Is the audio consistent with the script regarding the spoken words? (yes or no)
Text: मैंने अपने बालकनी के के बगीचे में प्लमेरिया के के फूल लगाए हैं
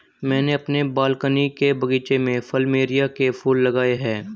no